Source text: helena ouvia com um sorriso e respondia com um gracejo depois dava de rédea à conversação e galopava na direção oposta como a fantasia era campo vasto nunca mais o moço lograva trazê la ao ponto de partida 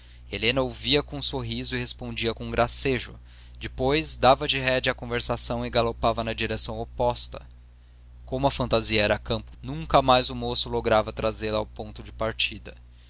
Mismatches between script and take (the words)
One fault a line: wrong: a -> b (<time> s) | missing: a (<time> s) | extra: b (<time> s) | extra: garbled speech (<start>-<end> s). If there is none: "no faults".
missing: vasto (9.5 s)